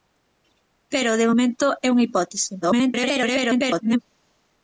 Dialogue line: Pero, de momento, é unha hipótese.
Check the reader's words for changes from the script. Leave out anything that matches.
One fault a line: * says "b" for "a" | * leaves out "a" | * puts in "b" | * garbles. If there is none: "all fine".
* garbles